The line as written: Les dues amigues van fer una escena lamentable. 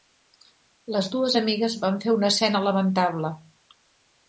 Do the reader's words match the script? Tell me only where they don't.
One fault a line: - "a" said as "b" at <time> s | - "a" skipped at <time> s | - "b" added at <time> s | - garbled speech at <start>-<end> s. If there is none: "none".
none